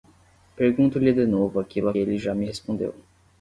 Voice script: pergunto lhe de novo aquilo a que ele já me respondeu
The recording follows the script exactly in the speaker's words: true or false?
false